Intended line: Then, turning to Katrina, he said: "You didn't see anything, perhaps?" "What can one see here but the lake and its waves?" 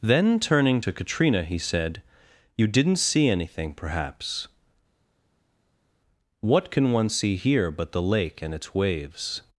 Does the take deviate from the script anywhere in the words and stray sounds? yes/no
no